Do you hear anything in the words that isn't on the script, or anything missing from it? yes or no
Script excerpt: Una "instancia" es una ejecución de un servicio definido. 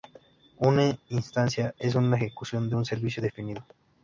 no